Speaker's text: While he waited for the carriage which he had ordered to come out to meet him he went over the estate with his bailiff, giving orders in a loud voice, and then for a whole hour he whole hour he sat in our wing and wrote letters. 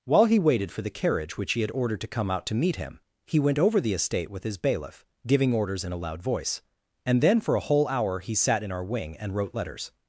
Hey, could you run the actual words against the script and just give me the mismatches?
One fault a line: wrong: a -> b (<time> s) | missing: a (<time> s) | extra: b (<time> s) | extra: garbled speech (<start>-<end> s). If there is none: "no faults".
missing: whole hour he (8.3 s)